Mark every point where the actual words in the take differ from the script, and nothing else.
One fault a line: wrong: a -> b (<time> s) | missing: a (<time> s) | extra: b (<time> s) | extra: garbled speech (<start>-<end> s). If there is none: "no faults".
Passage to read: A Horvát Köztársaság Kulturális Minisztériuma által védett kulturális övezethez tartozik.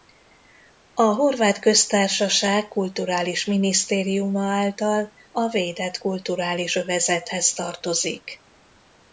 extra: a (5.3 s)